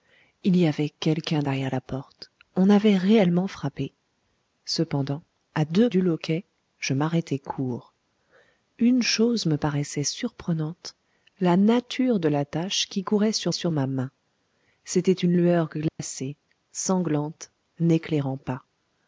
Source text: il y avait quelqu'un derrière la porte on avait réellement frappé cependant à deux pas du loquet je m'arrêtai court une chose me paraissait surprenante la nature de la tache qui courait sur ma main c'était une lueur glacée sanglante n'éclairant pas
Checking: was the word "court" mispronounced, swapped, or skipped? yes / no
no